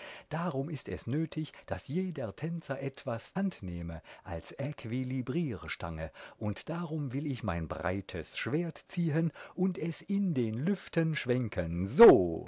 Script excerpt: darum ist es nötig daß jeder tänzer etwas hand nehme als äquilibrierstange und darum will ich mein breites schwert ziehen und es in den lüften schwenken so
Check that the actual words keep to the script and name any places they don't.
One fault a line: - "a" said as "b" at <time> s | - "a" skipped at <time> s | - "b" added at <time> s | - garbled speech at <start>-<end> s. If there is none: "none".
none